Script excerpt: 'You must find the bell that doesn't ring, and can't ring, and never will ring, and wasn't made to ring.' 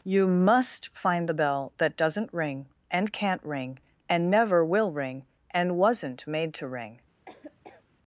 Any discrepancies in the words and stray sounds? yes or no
yes